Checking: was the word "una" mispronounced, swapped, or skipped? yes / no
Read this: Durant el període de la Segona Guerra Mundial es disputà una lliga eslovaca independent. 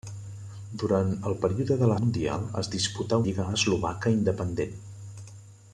yes